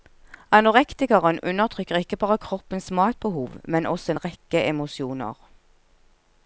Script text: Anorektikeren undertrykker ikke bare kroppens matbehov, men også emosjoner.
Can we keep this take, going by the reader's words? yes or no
no